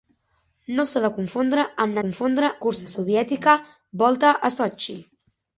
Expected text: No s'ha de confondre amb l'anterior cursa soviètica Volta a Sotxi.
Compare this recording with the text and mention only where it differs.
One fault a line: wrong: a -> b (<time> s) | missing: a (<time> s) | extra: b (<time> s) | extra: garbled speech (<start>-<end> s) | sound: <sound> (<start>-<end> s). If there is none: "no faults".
wrong: l'anterior -> confondre (2.0 s)